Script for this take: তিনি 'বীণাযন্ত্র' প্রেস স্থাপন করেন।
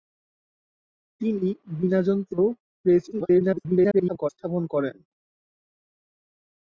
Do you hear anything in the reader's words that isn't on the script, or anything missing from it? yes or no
yes